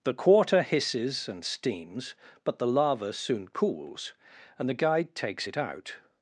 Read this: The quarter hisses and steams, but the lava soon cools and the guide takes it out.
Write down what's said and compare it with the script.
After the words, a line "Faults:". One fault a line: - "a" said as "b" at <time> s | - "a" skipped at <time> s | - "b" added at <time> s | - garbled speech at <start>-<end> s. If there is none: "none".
The quarter hisses and steams, but the lava soon cools and the guide takes it out.
Faults:
none